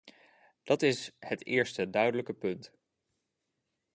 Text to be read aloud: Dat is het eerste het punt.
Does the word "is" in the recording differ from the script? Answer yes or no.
no